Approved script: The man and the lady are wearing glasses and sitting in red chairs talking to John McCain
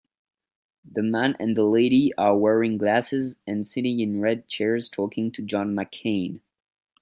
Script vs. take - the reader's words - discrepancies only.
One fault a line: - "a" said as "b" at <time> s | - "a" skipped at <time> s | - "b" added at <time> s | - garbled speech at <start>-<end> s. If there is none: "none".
none